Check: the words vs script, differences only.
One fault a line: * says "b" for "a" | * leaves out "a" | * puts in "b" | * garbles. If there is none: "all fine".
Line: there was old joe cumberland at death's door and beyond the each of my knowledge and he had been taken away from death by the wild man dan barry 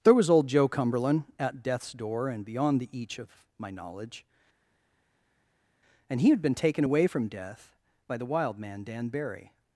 all fine